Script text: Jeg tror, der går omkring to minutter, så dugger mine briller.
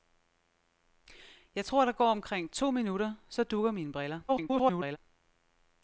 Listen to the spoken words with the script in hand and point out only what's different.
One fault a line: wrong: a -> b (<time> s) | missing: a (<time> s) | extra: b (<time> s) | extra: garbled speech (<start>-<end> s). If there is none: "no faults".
extra: garbled speech (4.3-5.0 s)